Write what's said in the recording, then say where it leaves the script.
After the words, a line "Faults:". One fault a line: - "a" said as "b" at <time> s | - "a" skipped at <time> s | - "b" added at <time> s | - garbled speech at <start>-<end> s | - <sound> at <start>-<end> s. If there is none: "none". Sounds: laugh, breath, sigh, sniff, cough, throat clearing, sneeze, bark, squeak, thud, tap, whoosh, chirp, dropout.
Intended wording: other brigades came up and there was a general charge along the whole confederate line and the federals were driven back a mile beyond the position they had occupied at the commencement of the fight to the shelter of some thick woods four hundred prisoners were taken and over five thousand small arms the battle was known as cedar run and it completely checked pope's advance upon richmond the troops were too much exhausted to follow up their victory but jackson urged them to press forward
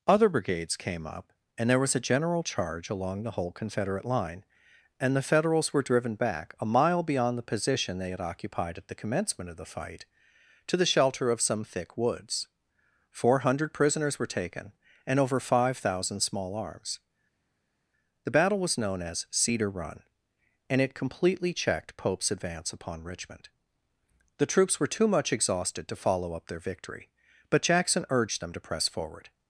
other brigades came up and there was a general charge along the whole confederate line and the federals were driven back a mile beyond the position they had occupied at the commencement of the fight to the shelter of some thick woods four hundred prisoners were taken and over five thousand small arms the battle was known as cedar run and it completely checked pope's advance upon richmond the troops were too much exhausted to follow up their victory but jackson urged them to press forward
Faults:
none